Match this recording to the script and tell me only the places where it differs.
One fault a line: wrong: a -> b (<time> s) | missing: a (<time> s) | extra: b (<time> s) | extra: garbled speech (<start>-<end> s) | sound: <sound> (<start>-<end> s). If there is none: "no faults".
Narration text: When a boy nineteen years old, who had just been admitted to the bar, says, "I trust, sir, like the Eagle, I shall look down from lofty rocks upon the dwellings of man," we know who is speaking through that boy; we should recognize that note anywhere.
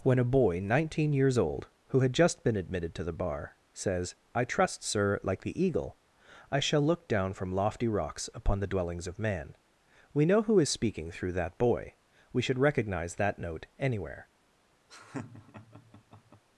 sound: laugh (14.9-16.4 s)